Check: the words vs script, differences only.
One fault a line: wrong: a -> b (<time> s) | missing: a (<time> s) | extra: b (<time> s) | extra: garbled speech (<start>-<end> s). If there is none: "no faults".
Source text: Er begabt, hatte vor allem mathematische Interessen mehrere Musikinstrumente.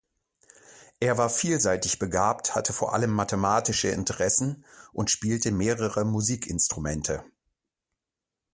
extra: war vielseitig (1.2 s)
extra: und spielte (4.9 s)